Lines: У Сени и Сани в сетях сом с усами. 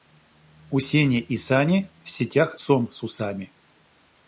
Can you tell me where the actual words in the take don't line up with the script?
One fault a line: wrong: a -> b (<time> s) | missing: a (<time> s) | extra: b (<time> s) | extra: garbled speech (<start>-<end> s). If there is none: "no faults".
no faults